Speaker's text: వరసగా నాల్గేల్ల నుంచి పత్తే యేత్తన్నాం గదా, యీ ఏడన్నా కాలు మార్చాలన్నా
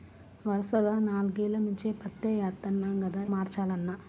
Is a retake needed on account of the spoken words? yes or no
yes